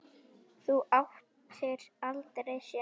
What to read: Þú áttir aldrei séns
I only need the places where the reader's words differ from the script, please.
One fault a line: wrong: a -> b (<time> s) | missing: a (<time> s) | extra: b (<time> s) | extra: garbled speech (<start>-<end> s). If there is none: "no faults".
no faults